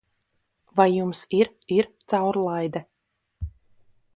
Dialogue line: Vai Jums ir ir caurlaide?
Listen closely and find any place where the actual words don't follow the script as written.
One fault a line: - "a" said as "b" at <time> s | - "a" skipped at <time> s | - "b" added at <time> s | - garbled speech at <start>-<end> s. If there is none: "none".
none